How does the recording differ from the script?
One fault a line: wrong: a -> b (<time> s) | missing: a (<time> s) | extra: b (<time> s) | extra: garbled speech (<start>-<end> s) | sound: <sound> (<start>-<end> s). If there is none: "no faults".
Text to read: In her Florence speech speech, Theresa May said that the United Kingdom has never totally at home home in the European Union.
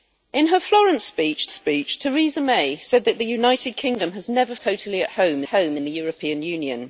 no faults